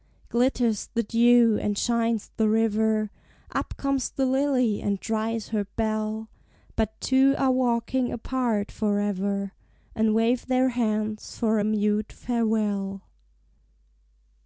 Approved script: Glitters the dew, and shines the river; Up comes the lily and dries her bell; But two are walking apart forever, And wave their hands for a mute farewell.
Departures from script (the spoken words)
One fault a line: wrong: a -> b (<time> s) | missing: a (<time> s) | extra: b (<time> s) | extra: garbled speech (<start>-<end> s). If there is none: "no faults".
no faults